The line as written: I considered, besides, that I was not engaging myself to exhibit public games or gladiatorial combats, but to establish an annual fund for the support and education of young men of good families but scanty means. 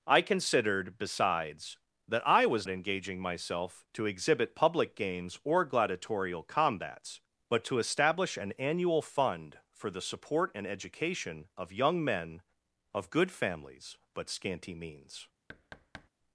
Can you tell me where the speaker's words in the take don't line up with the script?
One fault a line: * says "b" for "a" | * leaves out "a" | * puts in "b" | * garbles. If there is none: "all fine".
* leaves out "not"